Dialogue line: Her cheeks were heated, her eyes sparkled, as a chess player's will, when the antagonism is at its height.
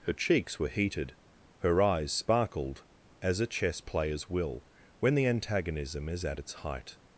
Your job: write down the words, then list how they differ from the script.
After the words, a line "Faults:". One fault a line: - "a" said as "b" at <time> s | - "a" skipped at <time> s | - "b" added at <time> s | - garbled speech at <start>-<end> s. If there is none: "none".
Her cheeks were heated, her eyes sparkled, as a chess player's will, when the antagonism is at its height.
Faults:
none